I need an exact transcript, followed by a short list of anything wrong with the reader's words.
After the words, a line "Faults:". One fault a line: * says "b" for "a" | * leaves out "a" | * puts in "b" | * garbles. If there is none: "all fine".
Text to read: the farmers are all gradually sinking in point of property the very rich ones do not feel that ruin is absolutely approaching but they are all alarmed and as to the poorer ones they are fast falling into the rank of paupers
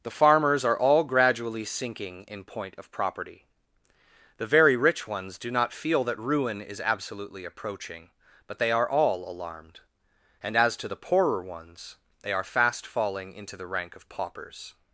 the farmers are all gradually sinking in point of property the very rich ones do not feel that ruin is absolutely approaching but they are all alarmed and as to the poorer ones they are fast falling into the rank of paupers
Faults:
all fine